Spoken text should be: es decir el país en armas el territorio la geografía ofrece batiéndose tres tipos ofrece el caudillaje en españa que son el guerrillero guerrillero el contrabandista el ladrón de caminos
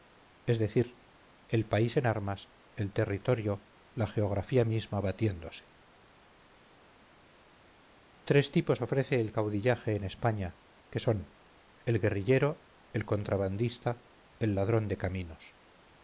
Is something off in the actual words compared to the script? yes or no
yes